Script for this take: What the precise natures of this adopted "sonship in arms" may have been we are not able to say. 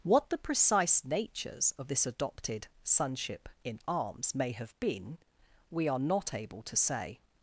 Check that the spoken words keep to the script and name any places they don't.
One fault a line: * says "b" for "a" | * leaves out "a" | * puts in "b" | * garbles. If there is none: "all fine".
all fine